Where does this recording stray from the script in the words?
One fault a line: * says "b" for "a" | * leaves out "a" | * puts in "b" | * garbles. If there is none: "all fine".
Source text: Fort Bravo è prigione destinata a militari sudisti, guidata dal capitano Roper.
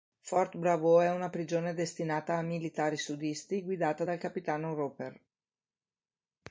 * puts in "una"